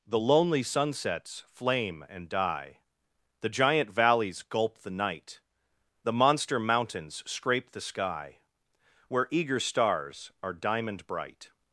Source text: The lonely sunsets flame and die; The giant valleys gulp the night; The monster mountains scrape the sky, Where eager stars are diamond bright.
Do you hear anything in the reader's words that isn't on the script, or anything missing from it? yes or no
no